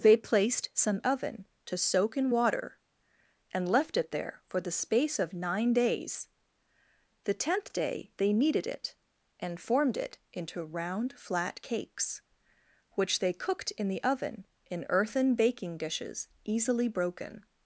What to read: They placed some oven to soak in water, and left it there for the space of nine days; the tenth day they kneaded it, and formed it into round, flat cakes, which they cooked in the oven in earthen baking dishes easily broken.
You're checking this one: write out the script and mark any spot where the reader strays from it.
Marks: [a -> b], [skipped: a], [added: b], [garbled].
They placed some oven to soak in water, and left it there for the space of nine days; the tenth day they kneaded it, and formed it into round, flat cakes, which they cooked in the oven in earthen baking dishes easily broken.